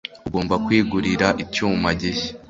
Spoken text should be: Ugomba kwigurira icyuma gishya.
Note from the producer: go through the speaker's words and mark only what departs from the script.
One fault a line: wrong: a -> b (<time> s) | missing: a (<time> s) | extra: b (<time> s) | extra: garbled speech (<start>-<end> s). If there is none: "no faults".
no faults